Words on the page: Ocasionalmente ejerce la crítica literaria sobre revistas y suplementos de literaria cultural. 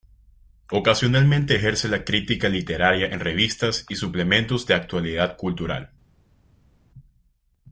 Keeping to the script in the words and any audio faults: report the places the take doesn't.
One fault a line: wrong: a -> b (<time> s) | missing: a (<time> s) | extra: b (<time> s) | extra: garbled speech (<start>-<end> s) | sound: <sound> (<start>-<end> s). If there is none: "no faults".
wrong: sobre -> en (3.1 s)
wrong: literaria -> actualidad (4.7 s)